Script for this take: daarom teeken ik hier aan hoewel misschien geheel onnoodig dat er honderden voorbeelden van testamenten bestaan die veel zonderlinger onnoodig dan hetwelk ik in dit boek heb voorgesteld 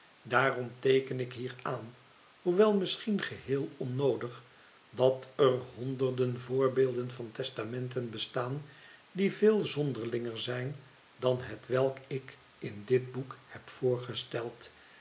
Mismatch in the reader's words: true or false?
true